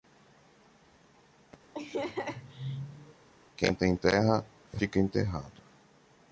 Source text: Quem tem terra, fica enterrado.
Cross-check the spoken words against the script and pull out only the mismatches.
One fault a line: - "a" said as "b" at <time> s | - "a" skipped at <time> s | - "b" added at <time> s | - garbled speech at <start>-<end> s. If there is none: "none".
none